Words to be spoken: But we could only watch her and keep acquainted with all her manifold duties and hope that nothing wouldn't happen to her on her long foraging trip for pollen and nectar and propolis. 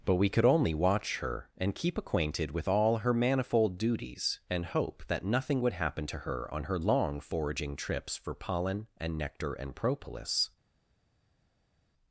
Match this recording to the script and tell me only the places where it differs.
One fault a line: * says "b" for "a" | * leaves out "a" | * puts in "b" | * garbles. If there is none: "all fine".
* says "would" for "wouldn't"
* says "trips" for "trip"